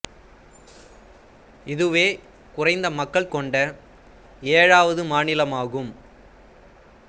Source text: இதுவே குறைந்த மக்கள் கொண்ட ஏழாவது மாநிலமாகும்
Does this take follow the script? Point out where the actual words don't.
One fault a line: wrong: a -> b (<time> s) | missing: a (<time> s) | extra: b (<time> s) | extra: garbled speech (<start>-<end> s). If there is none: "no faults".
no faults